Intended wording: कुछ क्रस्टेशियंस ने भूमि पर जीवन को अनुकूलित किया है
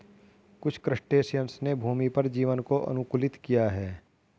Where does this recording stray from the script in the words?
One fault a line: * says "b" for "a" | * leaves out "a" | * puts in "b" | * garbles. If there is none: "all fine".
all fine